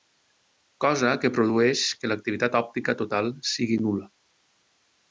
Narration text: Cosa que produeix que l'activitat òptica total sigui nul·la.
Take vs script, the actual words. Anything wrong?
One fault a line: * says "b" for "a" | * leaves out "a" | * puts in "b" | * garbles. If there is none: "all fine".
all fine